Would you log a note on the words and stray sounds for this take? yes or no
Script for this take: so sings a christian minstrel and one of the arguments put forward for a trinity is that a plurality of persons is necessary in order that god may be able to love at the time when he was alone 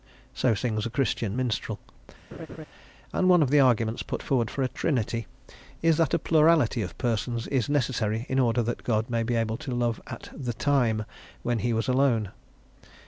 yes